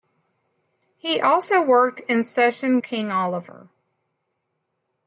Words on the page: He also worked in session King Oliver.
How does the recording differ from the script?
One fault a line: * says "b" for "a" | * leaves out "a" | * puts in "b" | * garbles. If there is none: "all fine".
all fine